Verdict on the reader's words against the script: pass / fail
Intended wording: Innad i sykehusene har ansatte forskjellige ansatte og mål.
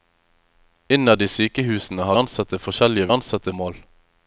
pass